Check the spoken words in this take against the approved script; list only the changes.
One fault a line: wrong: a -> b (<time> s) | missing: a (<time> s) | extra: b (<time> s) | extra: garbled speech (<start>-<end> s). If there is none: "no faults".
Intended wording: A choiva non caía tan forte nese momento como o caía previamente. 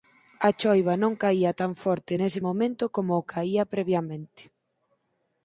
no faults